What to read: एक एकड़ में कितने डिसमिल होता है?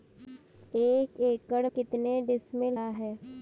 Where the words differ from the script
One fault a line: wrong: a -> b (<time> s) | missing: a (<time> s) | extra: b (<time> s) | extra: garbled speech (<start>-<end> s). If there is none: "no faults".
missing: में (1.7 s)
missing: होता (2.8 s)